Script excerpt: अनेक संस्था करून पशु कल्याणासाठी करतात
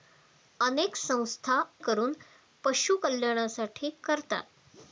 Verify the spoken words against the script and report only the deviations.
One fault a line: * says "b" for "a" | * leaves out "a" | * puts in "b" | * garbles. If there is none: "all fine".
all fine